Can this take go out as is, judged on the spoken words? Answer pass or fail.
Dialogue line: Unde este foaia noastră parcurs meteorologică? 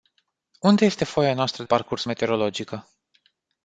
pass